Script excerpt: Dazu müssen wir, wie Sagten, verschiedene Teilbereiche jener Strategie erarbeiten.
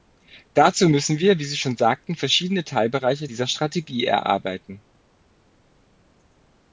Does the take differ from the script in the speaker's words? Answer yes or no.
yes